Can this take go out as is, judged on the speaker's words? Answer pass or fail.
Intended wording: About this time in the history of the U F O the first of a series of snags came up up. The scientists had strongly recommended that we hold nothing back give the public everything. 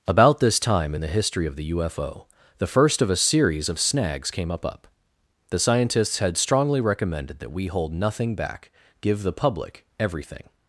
pass